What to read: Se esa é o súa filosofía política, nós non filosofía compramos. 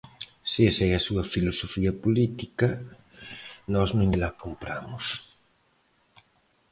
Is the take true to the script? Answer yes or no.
no